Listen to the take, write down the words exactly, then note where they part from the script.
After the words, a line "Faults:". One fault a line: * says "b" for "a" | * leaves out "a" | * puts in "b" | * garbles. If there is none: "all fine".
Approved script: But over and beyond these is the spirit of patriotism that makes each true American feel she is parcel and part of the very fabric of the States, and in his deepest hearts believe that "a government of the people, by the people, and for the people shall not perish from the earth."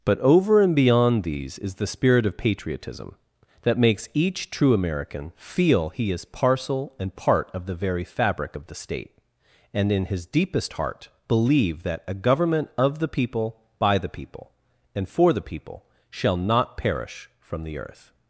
But over and beyond these is the spirit of patriotism that makes each true American feel he is parcel and part of the very fabric of the State, and in his deepest heart believe that "a government of the people, by the people, and for the people shall not perish from the earth."
Faults:
* says "he" for "she"
* says "State" for "States"
* says "heart" for "hearts"